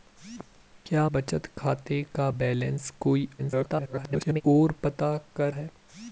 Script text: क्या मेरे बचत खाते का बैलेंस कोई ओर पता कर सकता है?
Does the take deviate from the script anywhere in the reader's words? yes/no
yes